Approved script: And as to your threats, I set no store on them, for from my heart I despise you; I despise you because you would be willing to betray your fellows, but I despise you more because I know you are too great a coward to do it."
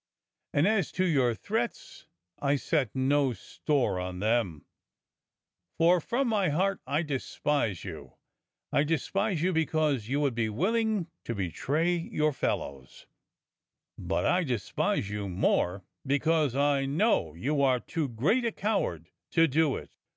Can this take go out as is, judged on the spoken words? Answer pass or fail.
pass